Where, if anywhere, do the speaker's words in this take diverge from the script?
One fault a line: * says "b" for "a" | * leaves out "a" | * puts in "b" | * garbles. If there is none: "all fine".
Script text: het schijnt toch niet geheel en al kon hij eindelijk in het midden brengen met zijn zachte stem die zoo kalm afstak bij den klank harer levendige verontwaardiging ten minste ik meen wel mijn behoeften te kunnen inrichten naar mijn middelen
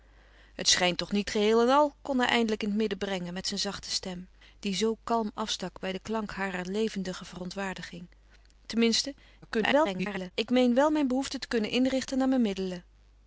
* garbles